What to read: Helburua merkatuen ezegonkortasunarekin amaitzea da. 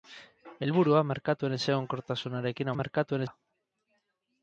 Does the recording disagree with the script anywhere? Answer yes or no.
yes